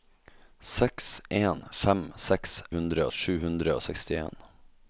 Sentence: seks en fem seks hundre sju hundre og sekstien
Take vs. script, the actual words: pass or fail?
pass